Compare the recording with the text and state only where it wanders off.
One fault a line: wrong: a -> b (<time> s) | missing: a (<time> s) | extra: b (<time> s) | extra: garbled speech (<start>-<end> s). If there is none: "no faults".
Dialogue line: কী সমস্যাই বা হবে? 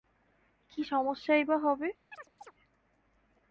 no faults